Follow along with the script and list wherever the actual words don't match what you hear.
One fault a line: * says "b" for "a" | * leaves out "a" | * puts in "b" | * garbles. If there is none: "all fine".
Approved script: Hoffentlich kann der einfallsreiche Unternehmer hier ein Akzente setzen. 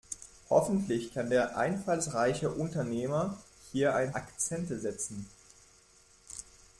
all fine